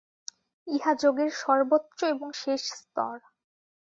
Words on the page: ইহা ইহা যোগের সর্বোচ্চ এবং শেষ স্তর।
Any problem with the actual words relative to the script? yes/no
yes